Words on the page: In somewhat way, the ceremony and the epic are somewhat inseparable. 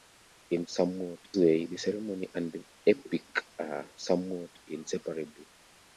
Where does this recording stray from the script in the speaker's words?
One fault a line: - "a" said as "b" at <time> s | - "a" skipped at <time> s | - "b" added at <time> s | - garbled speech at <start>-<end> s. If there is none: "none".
none